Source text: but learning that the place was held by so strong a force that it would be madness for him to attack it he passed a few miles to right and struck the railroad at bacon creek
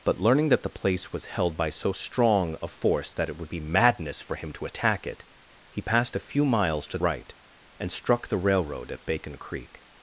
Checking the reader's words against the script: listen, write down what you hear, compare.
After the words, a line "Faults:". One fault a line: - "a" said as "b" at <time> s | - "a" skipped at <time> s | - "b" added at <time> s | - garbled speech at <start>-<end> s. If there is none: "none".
but learning that the place was held by so strong a force that it would be madness for him to attack it he passed a few miles to right and struck the railroad at bacon creek
Faults:
none